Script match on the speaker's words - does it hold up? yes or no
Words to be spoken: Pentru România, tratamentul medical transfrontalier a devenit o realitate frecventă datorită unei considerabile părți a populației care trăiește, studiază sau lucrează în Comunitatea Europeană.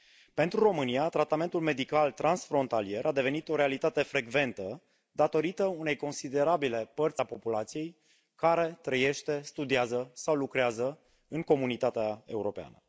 yes